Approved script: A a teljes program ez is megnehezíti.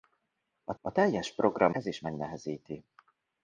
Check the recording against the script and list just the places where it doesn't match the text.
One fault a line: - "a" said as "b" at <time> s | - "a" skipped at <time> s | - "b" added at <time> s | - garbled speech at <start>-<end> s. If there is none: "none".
none